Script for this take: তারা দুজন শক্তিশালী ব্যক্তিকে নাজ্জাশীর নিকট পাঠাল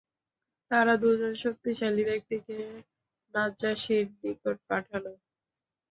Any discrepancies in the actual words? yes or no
no